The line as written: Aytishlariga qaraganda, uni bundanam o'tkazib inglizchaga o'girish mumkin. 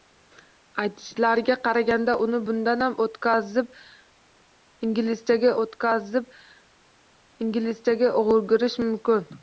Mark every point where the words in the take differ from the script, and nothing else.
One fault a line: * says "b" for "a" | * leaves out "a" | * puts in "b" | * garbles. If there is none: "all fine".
* puts in "o'tkazib inglizchaga"